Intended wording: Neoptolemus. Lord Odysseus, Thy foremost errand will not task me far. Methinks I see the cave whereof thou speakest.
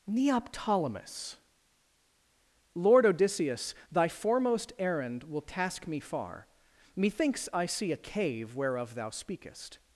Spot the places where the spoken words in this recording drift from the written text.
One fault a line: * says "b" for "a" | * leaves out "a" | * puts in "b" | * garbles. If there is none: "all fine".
* leaves out "not"
* says "a" for "the"